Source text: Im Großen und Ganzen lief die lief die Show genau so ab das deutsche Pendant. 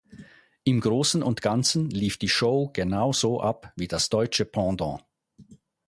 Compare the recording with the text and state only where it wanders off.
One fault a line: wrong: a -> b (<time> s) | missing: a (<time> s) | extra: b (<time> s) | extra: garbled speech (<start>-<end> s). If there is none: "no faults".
missing: lief die (2.3 s)
extra: wie (3.8 s)